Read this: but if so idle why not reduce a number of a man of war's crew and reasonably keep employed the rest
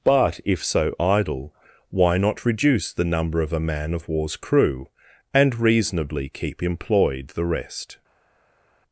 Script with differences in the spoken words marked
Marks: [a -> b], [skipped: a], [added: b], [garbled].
but if so idle why not reduce [a -> the] number of a man of war's crew and reasonably keep employed the rest